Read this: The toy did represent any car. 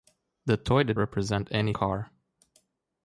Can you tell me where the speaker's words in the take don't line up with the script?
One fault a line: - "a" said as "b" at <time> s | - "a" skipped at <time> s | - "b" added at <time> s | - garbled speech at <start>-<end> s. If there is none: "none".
none